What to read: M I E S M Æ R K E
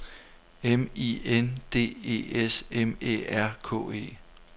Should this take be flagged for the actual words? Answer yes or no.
yes